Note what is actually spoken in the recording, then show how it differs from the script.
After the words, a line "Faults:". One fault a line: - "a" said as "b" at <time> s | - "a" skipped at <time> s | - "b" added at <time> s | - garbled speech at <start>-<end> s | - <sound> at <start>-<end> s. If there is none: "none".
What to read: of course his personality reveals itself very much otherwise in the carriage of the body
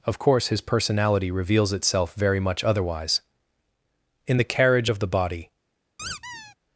of course his personality reveals itself very much otherwise in the carriage of the body
Faults:
- squeak at 6.0-6.6 s